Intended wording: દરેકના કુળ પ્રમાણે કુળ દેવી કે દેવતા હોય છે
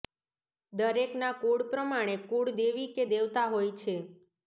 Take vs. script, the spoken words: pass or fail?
pass